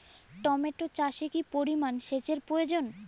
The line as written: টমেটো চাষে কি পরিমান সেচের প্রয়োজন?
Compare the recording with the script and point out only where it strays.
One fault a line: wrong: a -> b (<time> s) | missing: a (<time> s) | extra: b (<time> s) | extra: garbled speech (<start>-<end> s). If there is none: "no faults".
no faults